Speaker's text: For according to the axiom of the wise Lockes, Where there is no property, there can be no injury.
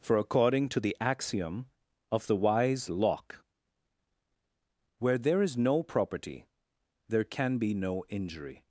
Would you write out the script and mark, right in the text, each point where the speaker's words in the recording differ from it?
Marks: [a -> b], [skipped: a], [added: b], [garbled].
For according to the axiom of the wise [Lockes, -> Locke] Where there is no property, there can be no injury.